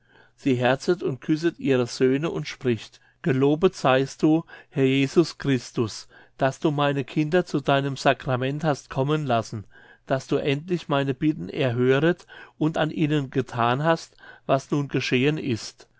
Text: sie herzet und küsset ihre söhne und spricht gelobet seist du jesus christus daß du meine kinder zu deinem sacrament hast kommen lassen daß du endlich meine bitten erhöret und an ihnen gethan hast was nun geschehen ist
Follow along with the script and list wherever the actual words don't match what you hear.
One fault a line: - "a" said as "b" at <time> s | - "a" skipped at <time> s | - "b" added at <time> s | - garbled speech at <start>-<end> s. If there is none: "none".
- "herr" added at 4.7 s